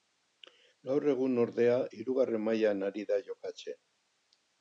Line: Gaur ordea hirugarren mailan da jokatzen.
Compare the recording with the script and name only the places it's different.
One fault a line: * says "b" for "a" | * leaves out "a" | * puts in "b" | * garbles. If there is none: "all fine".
* puts in "egun"
* puts in "ari"